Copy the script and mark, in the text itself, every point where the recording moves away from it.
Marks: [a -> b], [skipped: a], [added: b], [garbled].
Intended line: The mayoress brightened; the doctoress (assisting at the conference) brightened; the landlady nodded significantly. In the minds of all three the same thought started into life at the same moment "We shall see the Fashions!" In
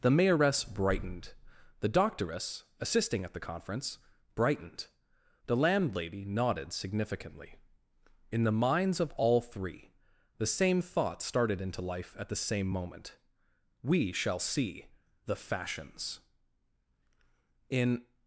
The mayoress brightened; the doctoress (assisting at the conference) brightened; the landlady nodded significantly. In the minds of all three the same thought started into life at the same moment "We shall see the Fashions!" In